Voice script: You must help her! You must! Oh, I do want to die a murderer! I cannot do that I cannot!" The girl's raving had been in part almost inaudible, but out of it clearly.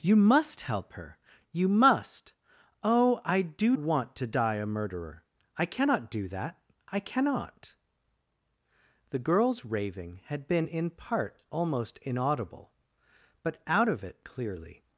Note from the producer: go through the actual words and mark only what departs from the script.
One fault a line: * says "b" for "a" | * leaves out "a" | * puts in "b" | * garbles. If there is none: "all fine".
all fine